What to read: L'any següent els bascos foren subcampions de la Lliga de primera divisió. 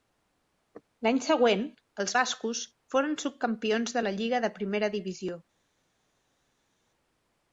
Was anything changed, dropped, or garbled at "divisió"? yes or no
no